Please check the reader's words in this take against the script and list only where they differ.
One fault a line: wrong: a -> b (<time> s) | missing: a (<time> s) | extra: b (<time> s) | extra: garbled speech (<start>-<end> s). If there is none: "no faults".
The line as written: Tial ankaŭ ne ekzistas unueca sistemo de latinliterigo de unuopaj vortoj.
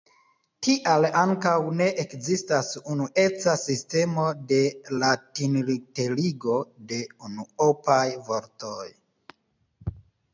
no faults